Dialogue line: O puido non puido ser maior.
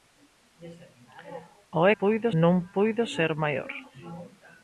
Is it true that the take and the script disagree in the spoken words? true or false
false